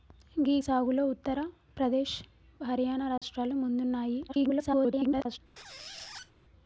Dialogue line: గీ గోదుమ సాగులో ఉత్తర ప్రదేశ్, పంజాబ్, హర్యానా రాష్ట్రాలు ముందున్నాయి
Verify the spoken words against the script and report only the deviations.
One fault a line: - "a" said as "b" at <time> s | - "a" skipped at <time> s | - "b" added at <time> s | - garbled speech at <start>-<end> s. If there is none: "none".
- "గోదుమ" skipped at 0.6 s
- "పంజాబ్" skipped at 2.1 s
- garbled speech at 4.3-5.4 s